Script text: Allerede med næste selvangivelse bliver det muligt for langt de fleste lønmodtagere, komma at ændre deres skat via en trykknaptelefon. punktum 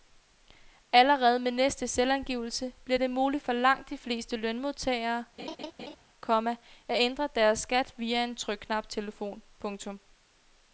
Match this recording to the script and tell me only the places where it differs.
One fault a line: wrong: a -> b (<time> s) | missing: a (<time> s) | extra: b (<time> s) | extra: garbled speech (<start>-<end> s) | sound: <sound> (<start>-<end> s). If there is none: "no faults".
sound: laugh (5.4-6.0 s)